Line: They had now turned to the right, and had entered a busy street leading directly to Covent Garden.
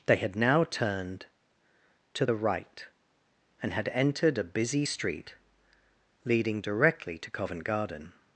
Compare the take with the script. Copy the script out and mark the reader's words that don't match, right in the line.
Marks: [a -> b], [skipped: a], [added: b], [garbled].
They had now turned to the right, and had entered a busy street leading directly to Covent Garden.